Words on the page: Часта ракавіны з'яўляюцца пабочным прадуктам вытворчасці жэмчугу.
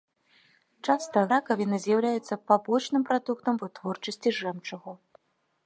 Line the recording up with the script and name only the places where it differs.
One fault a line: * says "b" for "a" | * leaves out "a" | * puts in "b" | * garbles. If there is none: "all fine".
all fine